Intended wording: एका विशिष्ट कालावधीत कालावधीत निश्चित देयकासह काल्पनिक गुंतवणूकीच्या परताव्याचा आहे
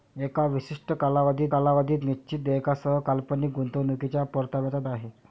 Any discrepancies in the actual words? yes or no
no